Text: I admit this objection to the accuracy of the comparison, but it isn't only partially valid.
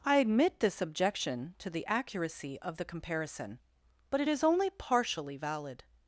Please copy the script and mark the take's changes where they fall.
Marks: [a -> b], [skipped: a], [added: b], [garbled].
I admit this objection to the accuracy of the comparison, but it [isn't -> is] only partially valid.